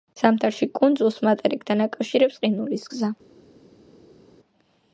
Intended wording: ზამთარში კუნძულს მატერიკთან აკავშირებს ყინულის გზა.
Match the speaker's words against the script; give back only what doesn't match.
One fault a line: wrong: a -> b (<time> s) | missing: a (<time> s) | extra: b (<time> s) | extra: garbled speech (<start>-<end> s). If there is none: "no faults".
no faults